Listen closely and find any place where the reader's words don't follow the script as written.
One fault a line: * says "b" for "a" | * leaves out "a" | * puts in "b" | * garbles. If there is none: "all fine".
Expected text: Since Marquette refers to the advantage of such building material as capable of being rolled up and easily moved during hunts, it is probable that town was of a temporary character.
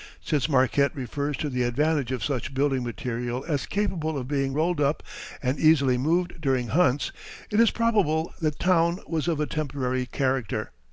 all fine